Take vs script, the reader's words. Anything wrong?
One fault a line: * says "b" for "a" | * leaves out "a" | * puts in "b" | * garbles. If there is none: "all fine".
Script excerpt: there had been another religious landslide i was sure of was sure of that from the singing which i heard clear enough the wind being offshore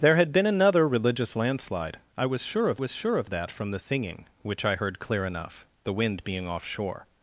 all fine